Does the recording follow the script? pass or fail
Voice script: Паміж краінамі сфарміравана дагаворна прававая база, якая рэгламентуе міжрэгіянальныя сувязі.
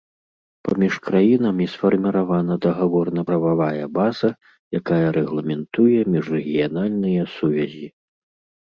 pass